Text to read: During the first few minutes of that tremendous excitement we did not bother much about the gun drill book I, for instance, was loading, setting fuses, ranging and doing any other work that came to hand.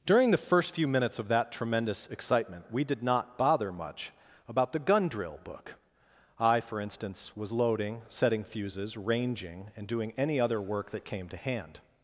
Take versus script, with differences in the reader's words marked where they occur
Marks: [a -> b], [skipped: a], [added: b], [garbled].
During the first few minutes of that tremendous excitement we did not bother much about the gun drill book I, for instance, was loading, setting fuses, ranging and doing any other work that came to hand.